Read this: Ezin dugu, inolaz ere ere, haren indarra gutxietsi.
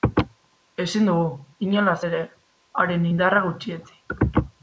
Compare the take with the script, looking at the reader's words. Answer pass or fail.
fail